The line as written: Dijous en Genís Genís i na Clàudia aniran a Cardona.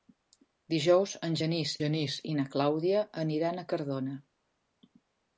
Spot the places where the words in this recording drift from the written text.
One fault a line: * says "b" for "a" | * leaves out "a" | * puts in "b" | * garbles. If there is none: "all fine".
all fine